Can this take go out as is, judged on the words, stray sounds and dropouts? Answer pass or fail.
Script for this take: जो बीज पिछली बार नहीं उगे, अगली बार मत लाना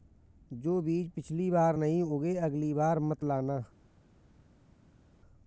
pass